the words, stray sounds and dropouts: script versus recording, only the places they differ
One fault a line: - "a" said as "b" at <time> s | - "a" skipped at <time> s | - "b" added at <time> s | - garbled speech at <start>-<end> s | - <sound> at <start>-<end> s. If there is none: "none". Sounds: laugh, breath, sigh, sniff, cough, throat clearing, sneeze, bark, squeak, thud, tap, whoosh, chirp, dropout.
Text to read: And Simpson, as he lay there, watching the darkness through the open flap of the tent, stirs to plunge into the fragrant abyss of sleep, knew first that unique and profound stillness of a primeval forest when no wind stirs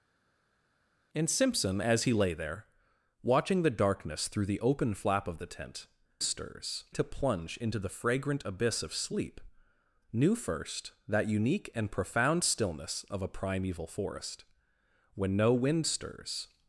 none